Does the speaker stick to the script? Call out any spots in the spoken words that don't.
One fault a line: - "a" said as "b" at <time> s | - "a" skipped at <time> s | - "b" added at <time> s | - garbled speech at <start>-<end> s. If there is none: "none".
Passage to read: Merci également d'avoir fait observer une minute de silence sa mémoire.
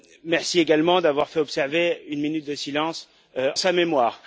none